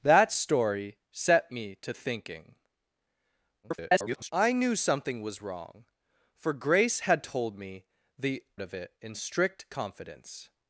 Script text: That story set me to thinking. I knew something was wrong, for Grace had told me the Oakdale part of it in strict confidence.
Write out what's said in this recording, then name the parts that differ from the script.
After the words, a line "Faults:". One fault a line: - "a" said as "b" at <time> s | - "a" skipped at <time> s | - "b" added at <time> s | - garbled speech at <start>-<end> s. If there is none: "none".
That story set me to thinking. [garbled] I knew something was wrong, for Grace had told me the Of it in strict confidence.
Faults:
- garbled speech at 3.6-4.3 s
- "Oakdale part" skipped at 8.4 s